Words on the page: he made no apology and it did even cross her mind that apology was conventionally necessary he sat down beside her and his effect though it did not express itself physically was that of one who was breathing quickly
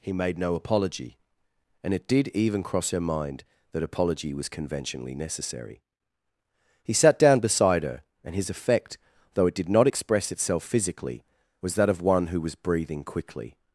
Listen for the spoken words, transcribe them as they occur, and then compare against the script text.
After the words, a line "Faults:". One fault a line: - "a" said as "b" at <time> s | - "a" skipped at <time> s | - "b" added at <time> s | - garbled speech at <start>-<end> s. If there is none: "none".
he made no apology and it did even cross her mind that apology was conventionally necessary he sat down beside her and his effect though it did not express itself physically was that of one who was breathing quickly
Faults:
none